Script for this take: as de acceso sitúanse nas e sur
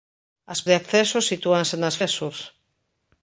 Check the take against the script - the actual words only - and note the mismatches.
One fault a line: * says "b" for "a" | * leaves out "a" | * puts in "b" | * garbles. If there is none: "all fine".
all fine